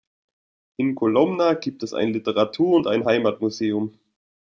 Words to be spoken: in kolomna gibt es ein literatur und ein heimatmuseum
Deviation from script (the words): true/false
false